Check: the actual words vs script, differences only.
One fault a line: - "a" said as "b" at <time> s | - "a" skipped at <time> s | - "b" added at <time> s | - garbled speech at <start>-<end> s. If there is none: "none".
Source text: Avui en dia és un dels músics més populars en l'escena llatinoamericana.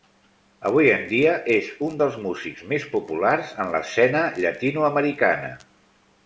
none